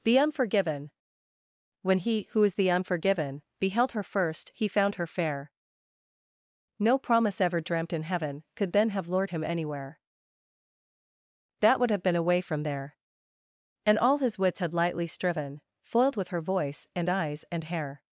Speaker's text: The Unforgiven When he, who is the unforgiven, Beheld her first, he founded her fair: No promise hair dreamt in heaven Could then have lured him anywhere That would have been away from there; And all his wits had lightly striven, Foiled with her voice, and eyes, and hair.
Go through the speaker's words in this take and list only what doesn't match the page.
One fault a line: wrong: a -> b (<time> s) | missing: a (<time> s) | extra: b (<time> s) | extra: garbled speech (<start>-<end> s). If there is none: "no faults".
wrong: founded -> found (4.7 s)
wrong: hair -> ever (7.4 s)